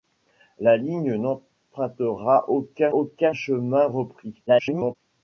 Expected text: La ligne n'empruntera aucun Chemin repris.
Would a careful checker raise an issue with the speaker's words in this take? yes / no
yes